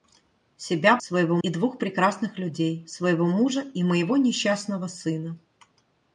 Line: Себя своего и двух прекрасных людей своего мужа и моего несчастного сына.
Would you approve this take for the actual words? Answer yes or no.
yes